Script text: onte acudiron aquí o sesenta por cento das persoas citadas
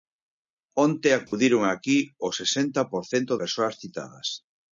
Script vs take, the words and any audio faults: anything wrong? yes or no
yes